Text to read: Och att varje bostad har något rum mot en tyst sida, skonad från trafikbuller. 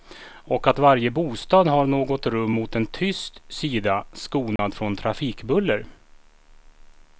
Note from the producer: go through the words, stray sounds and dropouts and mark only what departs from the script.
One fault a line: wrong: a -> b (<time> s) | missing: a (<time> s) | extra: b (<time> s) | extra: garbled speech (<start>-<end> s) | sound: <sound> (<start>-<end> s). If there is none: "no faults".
sound: dropout (4.6-4.6 s)